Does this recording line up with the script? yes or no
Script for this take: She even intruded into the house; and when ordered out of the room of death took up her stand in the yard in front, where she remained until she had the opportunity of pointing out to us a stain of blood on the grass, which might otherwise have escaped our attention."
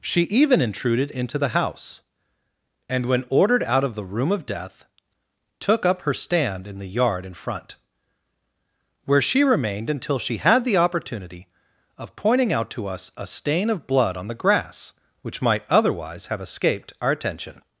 yes